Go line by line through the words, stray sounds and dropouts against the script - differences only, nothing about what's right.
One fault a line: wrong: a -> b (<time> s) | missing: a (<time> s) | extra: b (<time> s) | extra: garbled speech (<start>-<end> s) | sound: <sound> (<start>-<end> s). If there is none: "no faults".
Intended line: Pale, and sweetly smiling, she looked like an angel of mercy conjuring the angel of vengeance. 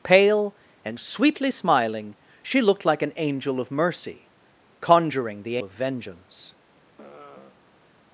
missing: angel (5.6 s)
sound: sigh (7.0-7.9 s)